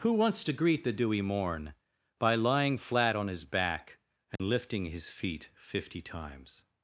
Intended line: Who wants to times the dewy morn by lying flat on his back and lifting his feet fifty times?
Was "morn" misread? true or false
false